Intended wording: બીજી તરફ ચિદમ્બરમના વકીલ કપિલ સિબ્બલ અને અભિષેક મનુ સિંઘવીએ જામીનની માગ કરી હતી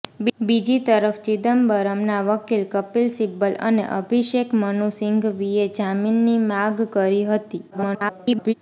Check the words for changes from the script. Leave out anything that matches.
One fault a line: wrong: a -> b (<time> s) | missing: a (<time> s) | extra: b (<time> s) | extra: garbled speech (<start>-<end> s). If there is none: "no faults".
extra: garbled speech (7.7-8.5 s)